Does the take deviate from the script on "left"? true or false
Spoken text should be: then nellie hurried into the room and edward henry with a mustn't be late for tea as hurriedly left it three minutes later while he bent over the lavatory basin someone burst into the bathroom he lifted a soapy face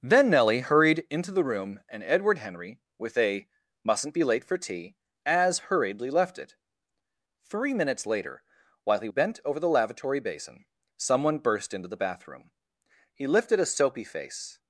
false